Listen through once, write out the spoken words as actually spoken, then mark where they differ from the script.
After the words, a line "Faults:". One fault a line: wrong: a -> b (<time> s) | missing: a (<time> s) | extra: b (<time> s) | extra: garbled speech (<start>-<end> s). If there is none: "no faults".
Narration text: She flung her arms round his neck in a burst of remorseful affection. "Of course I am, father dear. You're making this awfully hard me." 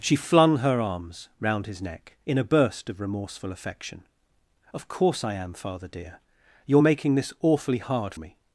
She flung her arms round his neck in a burst of remorseful affection. "Of course I am, father dear. You're making this awfully hard me."
Faults:
no faults